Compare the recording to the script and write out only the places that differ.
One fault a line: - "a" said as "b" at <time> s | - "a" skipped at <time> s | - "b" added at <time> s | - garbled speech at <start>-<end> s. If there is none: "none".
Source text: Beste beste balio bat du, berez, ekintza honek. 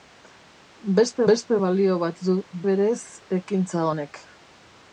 none